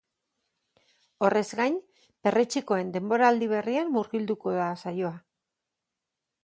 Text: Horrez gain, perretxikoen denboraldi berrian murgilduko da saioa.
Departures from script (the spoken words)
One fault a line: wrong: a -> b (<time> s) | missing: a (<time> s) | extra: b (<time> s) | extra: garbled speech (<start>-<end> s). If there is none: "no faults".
no faults